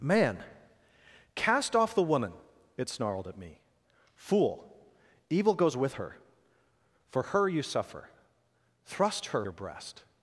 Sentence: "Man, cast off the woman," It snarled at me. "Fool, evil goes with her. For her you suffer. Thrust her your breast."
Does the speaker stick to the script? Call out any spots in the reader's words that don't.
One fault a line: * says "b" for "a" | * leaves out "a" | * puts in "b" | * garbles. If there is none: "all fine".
all fine